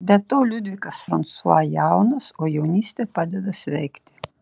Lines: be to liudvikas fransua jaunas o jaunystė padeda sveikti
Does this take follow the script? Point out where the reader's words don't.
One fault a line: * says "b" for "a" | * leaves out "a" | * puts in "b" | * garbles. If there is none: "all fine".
all fine